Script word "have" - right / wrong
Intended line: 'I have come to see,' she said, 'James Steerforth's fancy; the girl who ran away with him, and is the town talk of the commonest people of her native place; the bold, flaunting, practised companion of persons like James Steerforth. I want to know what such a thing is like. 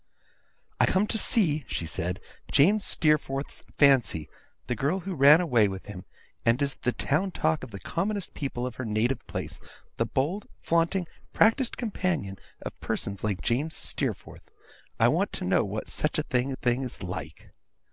wrong